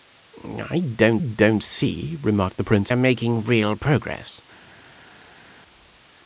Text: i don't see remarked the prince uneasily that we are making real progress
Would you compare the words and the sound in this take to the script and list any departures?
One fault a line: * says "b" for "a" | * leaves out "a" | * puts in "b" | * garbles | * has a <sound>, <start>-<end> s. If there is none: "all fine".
* puts in "don't"
* leaves out "uneasily that we"